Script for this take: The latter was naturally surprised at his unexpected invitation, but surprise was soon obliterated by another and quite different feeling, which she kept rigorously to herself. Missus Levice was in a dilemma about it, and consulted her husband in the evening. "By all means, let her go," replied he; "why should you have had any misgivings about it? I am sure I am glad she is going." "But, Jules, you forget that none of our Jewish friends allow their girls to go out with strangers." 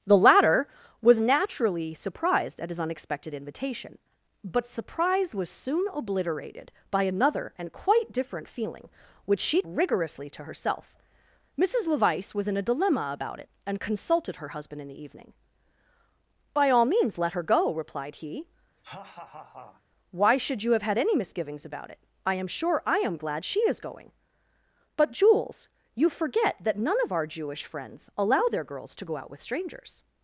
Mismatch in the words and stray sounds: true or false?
true